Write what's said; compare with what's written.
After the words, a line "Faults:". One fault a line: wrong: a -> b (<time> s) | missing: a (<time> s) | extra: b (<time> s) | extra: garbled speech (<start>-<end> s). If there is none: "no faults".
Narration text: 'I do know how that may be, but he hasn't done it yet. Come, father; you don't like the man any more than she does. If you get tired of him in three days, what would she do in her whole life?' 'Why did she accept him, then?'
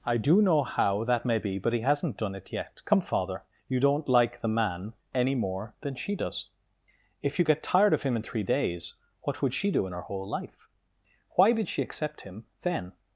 'I do know how that may be, but he hasn't done it yet. Come, father; you don't like the man any more than she does. If you get tired of him in three days, what would she do in her whole life?' 'Why did she accept him, then?'
Faults:
no faults